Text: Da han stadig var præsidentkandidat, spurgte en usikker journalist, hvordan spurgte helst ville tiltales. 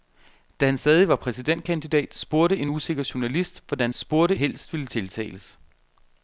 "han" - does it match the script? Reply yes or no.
yes